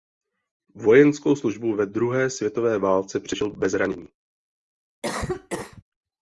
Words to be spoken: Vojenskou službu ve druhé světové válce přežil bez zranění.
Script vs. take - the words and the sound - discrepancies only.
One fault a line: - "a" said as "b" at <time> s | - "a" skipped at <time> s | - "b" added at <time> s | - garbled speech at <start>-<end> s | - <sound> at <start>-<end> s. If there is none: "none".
- cough at 5.0-5.8 s